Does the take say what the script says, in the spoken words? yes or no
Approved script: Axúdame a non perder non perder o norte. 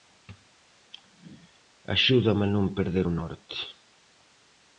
no